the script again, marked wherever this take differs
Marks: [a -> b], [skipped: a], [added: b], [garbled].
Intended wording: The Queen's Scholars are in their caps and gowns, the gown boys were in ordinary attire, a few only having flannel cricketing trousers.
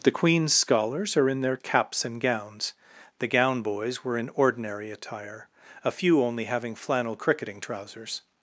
The Queen's Scholars are in their caps and gowns, the gown boys were in ordinary attire, a few only having flannel cricketing trousers.